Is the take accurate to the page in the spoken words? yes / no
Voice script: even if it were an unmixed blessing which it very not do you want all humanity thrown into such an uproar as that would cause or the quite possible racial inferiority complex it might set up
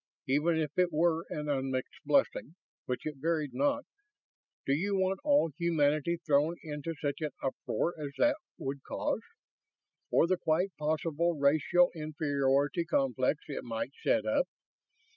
yes